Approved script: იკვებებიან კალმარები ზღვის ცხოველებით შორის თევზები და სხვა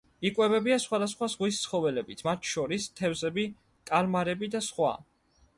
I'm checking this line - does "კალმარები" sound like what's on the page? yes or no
no